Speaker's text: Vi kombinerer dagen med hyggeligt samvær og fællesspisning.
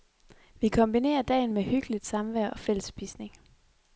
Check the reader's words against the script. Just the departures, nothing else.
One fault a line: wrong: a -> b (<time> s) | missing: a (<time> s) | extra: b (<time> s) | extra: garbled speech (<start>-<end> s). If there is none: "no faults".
no faults